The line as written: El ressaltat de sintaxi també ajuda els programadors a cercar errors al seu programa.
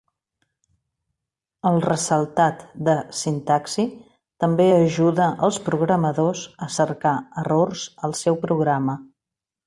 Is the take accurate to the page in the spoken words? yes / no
yes